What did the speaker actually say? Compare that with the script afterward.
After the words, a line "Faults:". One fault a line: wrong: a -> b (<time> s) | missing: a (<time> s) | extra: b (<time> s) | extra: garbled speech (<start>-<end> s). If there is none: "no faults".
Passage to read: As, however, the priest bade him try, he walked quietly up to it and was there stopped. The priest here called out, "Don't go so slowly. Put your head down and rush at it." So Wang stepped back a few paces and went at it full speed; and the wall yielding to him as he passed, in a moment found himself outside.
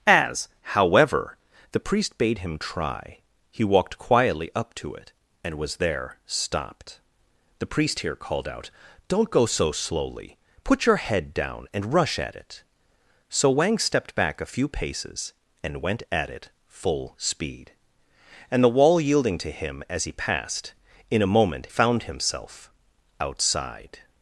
As, however, the priest bade him try, he walked quietly up to it and was there stopped. The priest here called out, "Don't go so slowly. Put your head down and rush at it." So Wang stepped back a few paces and went at it full speed; and the wall yielding to him as he passed, in a moment found himself outside.
Faults:
no faults